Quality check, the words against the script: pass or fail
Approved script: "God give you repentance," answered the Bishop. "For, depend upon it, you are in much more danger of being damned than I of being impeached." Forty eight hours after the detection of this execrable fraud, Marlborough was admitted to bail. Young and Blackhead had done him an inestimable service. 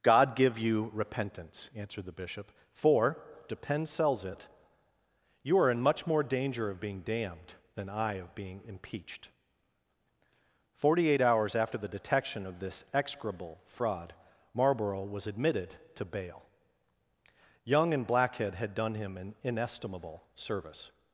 fail